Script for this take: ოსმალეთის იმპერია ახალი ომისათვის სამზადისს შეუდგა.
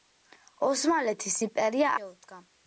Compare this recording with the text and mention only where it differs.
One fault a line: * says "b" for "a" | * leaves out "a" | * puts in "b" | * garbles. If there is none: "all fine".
* leaves out "ახალი ომისათვის სამზადისს"